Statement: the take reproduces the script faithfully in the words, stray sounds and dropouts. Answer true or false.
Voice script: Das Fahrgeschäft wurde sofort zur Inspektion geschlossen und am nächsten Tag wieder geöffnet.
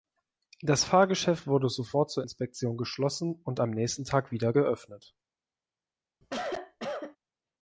false